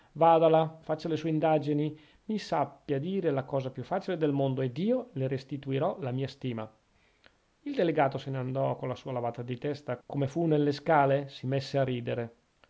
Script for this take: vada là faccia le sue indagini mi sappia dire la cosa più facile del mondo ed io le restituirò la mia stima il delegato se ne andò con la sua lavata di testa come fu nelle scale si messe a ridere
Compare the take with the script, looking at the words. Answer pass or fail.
pass